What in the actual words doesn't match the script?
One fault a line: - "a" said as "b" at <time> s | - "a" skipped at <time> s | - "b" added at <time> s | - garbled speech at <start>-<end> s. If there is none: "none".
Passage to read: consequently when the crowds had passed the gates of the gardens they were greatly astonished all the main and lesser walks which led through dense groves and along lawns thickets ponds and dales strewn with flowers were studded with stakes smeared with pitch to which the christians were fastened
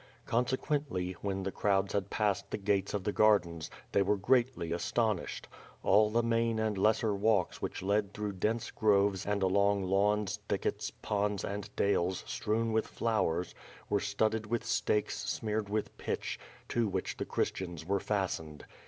none